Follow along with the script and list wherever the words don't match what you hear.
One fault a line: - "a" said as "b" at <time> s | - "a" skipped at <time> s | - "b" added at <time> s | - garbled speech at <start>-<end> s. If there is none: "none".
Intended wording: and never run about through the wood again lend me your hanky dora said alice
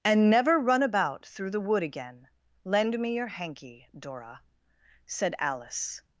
none